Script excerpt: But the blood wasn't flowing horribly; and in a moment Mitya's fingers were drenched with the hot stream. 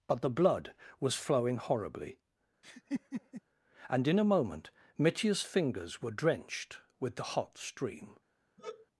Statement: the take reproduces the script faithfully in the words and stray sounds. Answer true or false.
false